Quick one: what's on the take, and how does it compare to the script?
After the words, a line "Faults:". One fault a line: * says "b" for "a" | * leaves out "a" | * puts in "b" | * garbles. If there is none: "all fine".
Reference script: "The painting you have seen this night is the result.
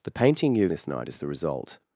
"The painting you have this night is the result.
Faults:
* leaves out "seen"